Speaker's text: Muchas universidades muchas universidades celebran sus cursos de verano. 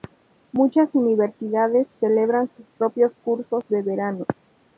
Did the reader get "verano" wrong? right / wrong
right